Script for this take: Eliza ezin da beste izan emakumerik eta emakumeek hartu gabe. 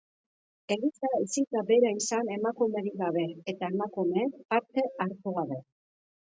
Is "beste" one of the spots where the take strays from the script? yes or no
yes